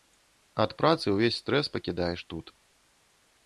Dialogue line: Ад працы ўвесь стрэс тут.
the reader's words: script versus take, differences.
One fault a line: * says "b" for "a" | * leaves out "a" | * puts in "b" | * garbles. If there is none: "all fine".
* puts in "пакідаеш"